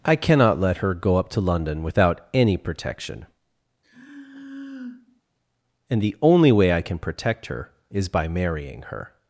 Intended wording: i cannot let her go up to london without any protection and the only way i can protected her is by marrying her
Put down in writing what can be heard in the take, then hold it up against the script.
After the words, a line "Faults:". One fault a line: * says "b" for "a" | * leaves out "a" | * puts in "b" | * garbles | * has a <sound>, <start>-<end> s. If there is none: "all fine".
i cannot let her go up to london without any protection and the only way i can protect her is by marrying her
Faults:
* has a sigh, 3.8-5.2 s
* says "protect" for "protected"